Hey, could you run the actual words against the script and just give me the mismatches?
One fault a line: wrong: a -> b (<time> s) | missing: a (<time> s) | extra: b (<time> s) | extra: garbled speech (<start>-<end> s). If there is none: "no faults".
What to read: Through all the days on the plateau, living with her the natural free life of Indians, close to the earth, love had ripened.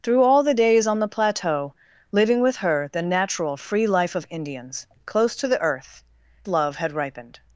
no faults